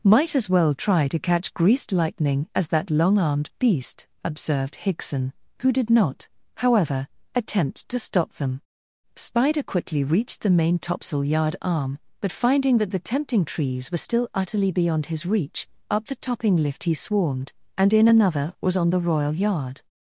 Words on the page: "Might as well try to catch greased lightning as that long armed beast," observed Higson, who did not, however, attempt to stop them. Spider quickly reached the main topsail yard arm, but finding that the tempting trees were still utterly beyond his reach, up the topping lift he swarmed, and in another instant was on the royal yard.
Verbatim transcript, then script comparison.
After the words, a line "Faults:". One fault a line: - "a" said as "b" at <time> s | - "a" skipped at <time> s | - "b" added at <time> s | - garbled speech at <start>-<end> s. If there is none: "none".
"Might as well try to catch greased lightning as that long armed beast," observed Higson, who did not, however, attempt to stop them. Spider quickly reached the main topsail yard arm, but finding that the tempting trees were still utterly beyond his reach, up the topping lift he swarmed, and in another was on the royal yard.
Faults:
- "instant" skipped at 18.5 s